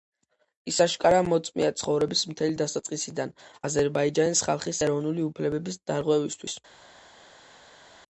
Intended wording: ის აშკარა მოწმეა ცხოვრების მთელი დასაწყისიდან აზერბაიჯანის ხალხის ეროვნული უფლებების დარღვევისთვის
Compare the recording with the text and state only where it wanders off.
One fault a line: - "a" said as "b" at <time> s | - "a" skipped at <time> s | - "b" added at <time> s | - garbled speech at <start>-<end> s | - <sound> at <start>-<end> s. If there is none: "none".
none